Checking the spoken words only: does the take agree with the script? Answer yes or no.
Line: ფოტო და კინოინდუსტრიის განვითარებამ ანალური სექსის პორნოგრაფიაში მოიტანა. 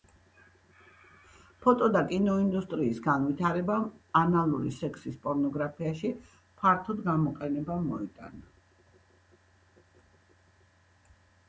no